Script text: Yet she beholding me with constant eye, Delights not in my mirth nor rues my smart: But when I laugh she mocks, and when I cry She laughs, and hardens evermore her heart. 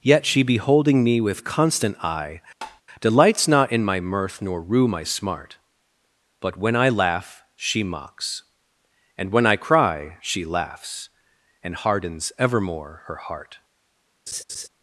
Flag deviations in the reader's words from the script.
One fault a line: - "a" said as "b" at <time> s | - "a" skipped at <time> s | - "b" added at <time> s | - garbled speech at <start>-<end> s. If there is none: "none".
- "rues" said as "rue" at 4.6 s